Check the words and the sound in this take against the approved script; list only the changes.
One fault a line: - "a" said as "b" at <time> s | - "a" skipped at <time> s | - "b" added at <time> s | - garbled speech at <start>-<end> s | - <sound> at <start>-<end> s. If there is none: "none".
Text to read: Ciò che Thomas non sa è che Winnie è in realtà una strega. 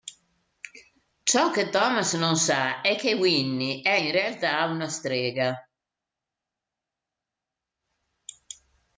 none